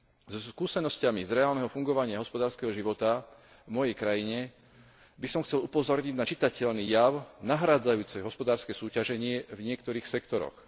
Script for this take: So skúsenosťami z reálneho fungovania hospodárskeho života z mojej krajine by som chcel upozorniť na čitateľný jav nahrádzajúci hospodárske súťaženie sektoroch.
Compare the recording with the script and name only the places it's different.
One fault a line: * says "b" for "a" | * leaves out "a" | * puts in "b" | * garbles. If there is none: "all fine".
* says "v" for "z"
* puts in "v niektorých"